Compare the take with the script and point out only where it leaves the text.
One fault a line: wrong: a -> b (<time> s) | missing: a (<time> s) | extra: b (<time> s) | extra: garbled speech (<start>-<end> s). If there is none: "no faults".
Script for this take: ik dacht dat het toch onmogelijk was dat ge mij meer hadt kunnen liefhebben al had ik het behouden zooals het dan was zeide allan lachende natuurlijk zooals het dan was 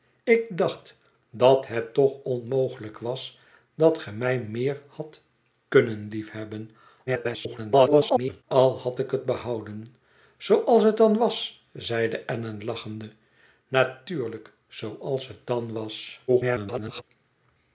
extra: garbled speech (7.1-8.4 s)
extra: garbled speech (16.3-17.0 s)